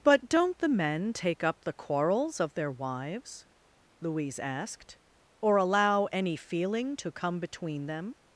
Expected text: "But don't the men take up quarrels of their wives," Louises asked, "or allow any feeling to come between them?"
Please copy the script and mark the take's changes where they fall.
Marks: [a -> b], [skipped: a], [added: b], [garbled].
"But don't the men take up [added: the] quarrels of their wives," [Louises -> Louise] asked, "or allow any feeling to come between them?"